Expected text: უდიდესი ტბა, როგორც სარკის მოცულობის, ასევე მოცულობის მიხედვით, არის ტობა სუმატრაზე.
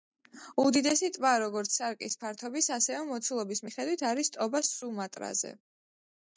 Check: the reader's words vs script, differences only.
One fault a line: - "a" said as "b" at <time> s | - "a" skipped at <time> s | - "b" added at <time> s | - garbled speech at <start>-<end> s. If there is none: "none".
- "მოცულობის" said as "ფართობის" at 2.2 s